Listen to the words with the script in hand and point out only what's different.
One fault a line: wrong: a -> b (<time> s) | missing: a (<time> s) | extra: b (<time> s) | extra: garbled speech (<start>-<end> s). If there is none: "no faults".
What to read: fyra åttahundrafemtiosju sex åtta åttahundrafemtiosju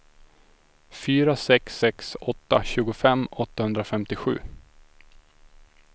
wrong: åttahundrafemtiosju -> sex (1.4 s)
extra: tjugofem (2.6 s)